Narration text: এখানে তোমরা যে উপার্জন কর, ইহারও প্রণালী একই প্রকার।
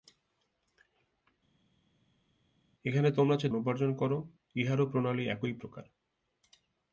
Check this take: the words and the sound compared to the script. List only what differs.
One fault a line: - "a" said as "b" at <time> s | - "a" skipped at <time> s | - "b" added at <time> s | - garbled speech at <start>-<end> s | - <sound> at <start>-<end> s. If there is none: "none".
none